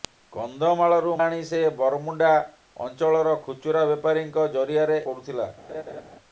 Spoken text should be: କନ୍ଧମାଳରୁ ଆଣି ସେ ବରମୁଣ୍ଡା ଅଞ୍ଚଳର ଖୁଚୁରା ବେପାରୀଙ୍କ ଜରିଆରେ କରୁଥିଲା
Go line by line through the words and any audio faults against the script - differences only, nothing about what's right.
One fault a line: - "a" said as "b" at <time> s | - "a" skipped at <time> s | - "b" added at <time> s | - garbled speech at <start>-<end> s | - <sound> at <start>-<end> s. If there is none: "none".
- laugh at 5.7-6.0 s